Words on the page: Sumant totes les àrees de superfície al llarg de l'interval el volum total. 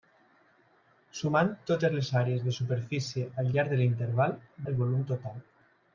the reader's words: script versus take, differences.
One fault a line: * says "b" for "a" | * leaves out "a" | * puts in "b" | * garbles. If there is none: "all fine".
all fine